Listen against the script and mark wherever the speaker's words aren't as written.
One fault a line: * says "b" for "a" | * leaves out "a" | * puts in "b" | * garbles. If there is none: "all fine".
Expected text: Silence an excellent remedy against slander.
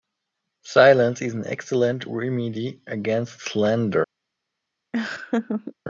* puts in "is"